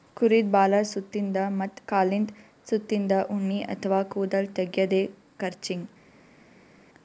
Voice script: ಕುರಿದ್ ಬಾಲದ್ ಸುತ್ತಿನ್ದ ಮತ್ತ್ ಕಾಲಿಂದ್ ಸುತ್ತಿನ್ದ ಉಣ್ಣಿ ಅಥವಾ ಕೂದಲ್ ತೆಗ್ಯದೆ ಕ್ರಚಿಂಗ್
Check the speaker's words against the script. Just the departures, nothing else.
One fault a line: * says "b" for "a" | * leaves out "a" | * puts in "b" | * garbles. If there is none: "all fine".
all fine